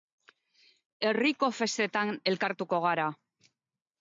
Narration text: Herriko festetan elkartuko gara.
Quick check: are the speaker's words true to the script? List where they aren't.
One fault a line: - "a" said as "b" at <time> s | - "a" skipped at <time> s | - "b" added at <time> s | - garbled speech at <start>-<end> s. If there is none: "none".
none